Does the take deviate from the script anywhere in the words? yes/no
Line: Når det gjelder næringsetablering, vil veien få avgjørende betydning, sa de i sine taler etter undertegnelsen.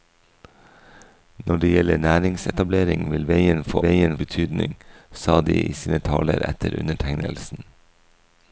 yes